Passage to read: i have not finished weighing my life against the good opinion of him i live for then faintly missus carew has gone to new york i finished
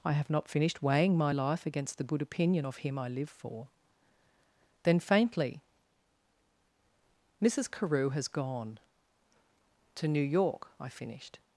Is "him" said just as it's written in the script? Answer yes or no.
yes